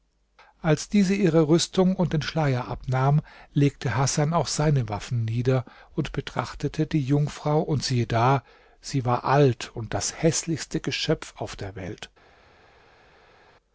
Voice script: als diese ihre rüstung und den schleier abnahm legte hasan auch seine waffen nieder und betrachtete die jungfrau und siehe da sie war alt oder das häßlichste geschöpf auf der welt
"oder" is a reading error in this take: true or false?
true